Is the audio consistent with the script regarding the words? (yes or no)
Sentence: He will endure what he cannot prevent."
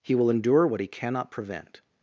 yes